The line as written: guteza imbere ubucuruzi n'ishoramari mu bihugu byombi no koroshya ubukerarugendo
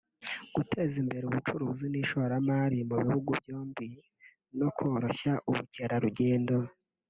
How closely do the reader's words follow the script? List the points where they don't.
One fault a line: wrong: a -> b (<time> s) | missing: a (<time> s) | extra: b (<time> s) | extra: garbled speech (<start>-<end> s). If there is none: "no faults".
no faults